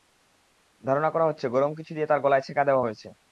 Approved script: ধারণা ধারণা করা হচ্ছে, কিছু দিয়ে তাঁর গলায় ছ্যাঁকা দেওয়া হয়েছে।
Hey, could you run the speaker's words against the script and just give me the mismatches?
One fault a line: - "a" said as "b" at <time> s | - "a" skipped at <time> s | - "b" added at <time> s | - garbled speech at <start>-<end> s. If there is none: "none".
- "ধারণা" skipped at 1.1 s
- "গরম" added at 1.5 s